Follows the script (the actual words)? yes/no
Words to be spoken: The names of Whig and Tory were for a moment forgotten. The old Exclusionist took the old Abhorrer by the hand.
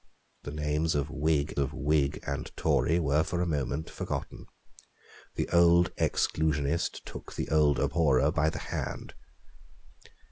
no